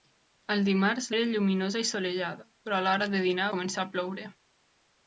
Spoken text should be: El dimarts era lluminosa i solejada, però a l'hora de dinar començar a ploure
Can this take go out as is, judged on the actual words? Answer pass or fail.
pass